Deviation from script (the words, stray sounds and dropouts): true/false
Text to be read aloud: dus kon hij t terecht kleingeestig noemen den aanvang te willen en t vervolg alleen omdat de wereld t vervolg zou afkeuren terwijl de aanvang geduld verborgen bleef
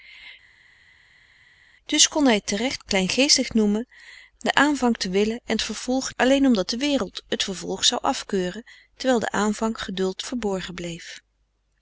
false